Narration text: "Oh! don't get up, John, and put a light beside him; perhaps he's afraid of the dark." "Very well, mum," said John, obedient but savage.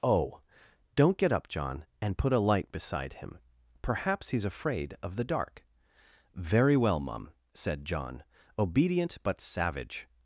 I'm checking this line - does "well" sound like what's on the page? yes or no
yes